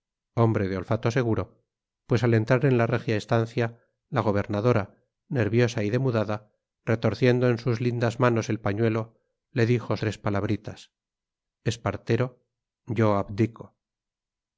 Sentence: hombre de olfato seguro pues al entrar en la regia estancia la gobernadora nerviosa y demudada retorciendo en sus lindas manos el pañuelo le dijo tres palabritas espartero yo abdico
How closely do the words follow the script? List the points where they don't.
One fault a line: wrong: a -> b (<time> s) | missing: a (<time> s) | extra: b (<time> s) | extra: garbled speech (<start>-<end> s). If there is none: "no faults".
no faults